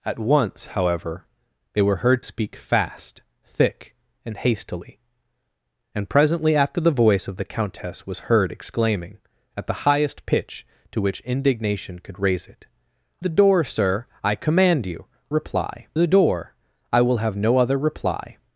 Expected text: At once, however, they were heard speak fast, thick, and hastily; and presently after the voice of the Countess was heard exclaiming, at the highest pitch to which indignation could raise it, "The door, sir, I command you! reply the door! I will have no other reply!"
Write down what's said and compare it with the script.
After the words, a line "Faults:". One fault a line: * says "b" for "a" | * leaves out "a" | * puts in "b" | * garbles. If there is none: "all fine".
At once, however, they were heard speak fast, thick, and hastily; and presently after the voice of the Countess was heard exclaiming, at the highest pitch to which indignation could raise it, "The door, sir, I command you! reply the door! I will have no other reply!"
Faults:
all fine